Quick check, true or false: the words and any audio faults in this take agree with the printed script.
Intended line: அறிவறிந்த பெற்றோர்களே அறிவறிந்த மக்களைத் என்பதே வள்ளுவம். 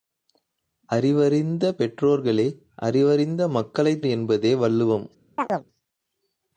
false